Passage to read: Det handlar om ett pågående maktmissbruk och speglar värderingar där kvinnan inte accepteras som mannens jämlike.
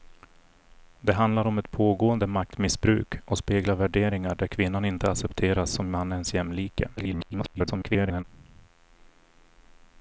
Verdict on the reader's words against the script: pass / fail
fail